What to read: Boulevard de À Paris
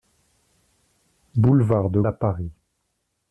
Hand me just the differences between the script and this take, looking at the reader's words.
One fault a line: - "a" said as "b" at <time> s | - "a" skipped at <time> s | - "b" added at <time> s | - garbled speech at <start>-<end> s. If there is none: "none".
none